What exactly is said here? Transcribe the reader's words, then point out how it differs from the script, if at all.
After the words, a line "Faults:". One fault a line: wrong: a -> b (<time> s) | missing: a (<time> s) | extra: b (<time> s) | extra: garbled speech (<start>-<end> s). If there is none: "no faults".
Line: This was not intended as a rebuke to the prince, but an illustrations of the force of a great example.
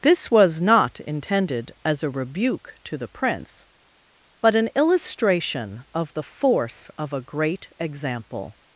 This was not intended as a rebuke to the prince, but an illustration of the force of a great example.
Faults:
wrong: illustrations -> illustration (4.8 s)